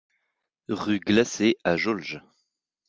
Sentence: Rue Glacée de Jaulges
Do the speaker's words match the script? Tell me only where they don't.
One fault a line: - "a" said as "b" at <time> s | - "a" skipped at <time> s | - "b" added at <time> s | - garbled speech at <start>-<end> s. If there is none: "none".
- "de" said as "à" at 1.6 s